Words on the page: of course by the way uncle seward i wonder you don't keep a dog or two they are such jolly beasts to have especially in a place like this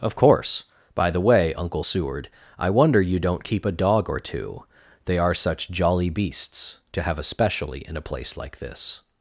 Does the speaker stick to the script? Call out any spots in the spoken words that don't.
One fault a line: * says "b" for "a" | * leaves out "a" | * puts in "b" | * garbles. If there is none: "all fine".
all fine